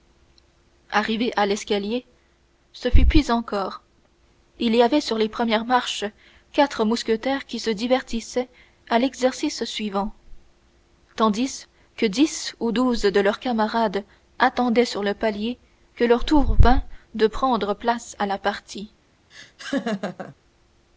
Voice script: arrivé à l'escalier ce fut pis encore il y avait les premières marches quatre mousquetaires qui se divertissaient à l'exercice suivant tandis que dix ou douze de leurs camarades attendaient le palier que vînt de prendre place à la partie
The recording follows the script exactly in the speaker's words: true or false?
false